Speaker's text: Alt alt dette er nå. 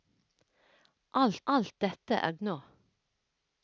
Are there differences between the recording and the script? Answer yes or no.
no